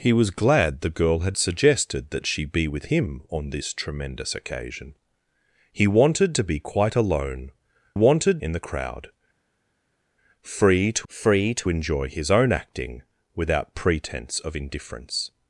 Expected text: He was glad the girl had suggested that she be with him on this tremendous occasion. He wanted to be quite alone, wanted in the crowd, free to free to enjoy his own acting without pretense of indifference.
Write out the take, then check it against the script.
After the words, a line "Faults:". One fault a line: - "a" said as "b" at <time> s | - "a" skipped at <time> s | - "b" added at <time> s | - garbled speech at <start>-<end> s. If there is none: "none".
He was glad the girl had suggested that she be with him on this tremendous occasion. He wanted to be quite alone, wanted in the crowd, free to free to enjoy his own acting without pretense of indifference.
Faults:
none